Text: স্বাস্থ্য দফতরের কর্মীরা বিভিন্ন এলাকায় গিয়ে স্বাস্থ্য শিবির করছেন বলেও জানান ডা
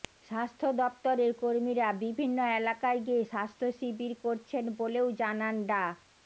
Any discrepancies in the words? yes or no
no